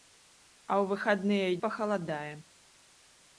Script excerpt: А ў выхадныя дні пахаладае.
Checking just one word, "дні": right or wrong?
wrong